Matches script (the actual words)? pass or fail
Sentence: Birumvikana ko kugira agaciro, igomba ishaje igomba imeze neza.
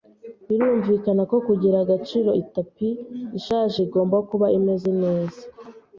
fail